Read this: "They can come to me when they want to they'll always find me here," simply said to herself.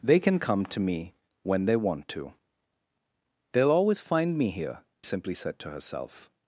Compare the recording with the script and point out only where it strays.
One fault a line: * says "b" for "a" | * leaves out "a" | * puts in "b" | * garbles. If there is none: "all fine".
all fine